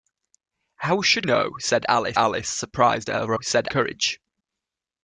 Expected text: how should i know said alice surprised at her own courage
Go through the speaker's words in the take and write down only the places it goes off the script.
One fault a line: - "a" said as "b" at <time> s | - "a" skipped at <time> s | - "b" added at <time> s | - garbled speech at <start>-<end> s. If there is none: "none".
- "i" skipped at 1.3 s
- "alice" added at 2.1 s
- "own" said as "said" at 3.4 s